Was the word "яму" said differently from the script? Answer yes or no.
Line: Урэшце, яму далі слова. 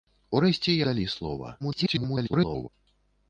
yes